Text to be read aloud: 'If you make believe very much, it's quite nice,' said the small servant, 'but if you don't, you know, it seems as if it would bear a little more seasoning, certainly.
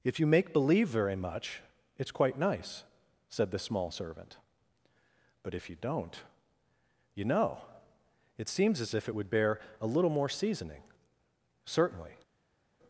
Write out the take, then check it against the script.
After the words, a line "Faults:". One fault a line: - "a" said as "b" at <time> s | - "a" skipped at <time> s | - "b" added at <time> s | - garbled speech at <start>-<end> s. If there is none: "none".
'If you make believe very much, it's quite nice,' said the small servant, 'but if you don't, you know, it seems as if it would bear a little more seasoning, certainly.
Faults:
none